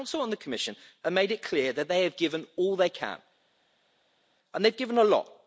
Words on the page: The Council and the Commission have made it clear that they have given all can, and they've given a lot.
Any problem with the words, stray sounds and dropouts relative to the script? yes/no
yes